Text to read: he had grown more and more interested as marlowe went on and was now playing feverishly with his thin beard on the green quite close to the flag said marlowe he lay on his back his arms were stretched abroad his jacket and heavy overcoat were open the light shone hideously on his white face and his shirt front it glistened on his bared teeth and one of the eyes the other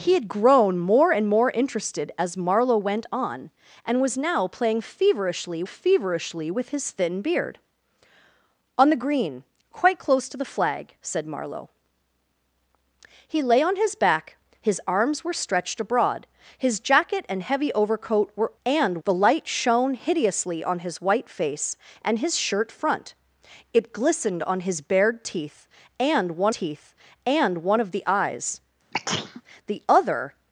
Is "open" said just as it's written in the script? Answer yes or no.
no